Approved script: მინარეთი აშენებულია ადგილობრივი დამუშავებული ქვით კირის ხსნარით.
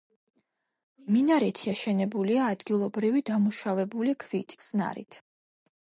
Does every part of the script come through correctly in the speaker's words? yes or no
no